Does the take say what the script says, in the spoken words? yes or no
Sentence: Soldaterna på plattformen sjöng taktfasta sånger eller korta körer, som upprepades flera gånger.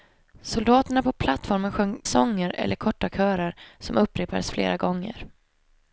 no